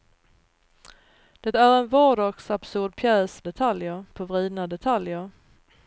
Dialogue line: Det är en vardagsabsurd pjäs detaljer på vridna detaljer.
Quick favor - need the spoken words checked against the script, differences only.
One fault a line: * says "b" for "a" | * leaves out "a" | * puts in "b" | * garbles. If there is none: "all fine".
all fine